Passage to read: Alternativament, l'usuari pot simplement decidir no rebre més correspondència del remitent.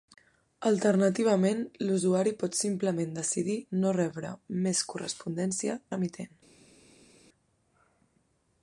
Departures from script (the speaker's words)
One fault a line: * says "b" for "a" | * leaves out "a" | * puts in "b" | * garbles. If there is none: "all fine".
* leaves out "del"